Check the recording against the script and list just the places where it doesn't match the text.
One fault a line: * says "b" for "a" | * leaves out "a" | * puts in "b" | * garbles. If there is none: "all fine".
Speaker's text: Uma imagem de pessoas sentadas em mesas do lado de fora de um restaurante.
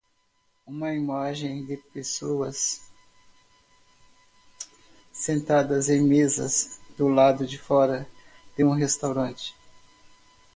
all fine